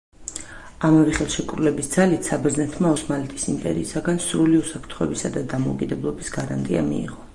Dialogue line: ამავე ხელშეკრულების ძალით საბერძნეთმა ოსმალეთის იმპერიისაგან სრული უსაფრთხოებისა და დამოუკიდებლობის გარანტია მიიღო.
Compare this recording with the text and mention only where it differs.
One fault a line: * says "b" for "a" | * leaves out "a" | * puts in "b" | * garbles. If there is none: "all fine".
all fine